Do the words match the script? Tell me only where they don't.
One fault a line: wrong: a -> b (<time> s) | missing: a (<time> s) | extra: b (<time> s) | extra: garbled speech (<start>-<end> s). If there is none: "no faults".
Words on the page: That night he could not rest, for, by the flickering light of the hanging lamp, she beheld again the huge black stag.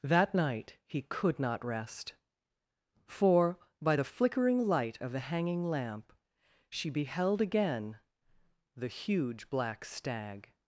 no faults